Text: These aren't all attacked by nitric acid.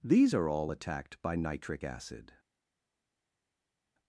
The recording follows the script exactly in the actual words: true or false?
false